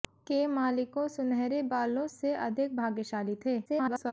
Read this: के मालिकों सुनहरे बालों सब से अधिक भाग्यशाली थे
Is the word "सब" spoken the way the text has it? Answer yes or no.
no